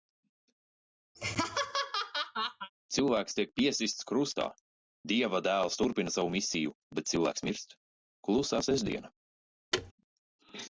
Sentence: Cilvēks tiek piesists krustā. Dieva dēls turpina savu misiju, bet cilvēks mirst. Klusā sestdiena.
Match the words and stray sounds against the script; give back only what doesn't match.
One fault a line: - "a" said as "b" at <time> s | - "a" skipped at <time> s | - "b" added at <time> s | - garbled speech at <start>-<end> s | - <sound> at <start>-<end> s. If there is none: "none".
- laugh at 1.1-2.7 s
- thud at 9.7-9.9 s